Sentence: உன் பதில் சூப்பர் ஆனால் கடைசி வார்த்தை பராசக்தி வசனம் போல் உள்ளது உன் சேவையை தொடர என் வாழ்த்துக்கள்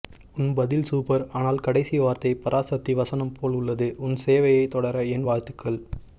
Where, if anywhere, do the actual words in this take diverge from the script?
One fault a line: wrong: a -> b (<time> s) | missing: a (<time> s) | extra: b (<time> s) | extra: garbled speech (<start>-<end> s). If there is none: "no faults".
no faults